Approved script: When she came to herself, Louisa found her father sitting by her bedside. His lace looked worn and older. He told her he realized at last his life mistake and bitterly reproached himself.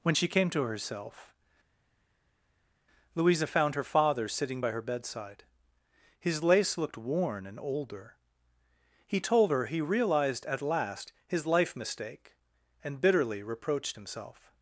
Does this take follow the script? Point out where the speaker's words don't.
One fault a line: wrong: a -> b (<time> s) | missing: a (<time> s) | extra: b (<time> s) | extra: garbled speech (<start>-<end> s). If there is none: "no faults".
no faults